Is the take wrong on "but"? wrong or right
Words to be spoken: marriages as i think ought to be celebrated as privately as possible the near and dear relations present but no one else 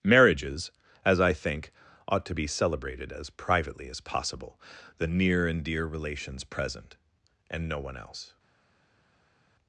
wrong